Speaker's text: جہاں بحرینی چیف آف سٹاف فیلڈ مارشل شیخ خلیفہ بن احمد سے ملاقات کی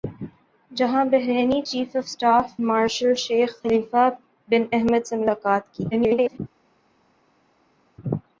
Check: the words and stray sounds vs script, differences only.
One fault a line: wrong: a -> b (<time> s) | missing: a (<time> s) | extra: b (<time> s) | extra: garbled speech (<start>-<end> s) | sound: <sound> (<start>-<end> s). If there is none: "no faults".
missing: فیلڈ (2.5 s)
extra: garbled speech (5.9-6.4 s)